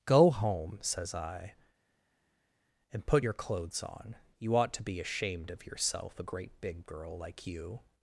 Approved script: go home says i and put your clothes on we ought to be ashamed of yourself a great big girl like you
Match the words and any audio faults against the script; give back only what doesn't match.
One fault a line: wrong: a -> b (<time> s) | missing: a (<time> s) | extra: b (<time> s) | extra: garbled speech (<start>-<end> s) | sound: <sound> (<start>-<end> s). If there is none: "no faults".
wrong: we -> you (4.4 s)